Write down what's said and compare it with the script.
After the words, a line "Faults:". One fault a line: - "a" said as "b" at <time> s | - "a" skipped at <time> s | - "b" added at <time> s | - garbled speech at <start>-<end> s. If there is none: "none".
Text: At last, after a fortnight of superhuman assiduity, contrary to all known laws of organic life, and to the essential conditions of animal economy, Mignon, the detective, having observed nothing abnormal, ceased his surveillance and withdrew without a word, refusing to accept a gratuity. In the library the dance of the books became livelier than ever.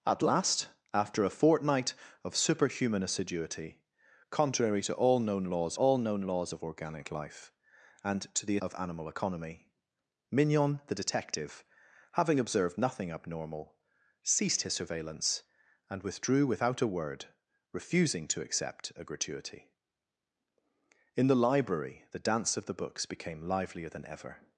At last, after a fortnight of superhuman assiduity, contrary to all known laws all known laws of organic life, and to the of animal economy, Mignon, the detective, having observed nothing abnormal, ceased his surveillance and withdrew without a word, refusing to accept a gratuity. In the library the dance of the books became livelier than ever.
Faults:
- "all known laws" added at 5.7 s
- "essential conditions" skipped at 8.6 s